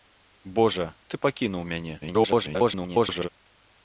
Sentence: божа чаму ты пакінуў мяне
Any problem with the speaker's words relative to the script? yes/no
yes